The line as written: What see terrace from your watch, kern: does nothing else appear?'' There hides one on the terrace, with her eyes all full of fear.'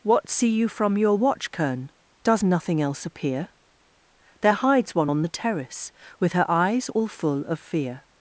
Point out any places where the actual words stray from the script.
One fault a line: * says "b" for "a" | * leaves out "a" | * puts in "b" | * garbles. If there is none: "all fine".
* says "you" for "terrace"